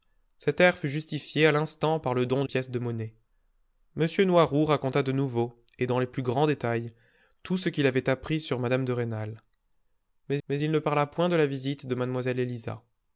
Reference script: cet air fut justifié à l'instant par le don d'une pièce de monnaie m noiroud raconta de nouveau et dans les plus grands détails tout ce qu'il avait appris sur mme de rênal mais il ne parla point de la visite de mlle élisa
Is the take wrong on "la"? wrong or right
right